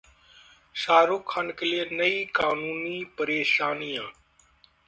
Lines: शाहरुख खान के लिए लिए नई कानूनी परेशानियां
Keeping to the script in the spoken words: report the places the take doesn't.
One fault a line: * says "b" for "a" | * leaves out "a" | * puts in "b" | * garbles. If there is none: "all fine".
* leaves out "लिए"